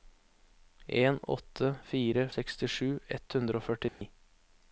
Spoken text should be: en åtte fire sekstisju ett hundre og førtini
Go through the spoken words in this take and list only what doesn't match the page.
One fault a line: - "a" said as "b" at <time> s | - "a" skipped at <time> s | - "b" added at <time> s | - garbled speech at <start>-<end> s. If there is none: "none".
none